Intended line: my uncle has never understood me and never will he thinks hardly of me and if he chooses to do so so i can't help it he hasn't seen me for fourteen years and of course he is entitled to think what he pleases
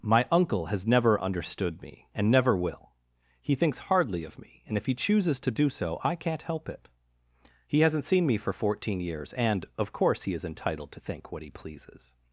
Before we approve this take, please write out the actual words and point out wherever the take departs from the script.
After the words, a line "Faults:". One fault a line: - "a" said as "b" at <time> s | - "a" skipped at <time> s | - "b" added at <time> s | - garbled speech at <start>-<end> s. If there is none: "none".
my uncle has never understood me and never will he thinks hardly of me and if he chooses to do so i can't help it he hasn't seen me for fourteen years and of course he is entitled to think what he pleases
Faults:
- "so" skipped at 6.0 s